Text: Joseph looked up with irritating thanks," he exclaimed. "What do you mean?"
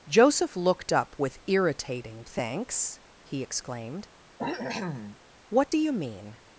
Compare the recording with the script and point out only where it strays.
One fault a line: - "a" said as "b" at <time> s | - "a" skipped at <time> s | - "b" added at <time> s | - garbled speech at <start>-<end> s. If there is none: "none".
none